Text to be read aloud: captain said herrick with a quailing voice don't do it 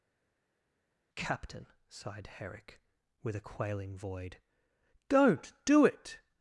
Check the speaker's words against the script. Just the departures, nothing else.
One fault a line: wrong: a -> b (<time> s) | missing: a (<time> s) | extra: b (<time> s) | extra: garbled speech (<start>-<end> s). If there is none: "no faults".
wrong: said -> sighed (1.9 s)
wrong: voice -> void (4.0 s)